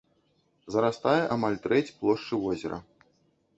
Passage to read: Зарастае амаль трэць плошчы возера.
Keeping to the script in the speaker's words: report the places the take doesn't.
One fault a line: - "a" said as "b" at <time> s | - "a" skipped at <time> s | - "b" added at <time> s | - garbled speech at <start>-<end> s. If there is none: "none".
none